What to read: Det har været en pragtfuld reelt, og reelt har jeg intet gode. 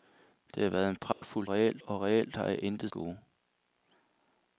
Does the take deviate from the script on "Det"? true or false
false